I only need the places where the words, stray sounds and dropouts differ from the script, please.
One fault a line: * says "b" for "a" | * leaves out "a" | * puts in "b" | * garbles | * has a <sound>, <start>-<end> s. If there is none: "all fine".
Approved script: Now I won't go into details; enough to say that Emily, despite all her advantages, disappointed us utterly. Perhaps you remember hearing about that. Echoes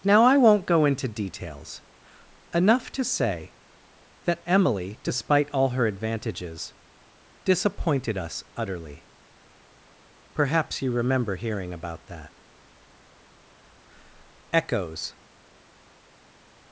all fine